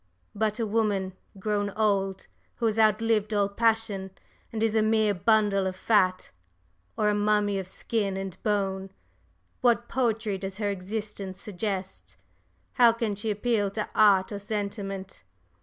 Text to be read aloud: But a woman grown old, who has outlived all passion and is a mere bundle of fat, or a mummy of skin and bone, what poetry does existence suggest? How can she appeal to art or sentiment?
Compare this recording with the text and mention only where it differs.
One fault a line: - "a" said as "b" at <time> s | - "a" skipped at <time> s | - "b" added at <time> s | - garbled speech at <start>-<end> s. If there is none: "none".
- "her" added at 10.6 s